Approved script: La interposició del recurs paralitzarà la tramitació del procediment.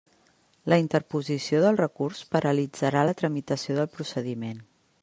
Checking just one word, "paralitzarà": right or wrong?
right